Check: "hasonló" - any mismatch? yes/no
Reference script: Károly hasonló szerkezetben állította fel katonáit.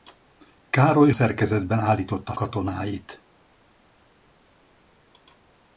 yes